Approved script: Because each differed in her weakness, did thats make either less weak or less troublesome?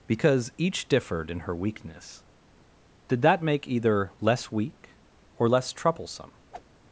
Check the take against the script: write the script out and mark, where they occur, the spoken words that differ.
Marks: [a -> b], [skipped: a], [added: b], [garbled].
Because each differed in her weakness, did [thats -> that] make either less weak or less troublesome?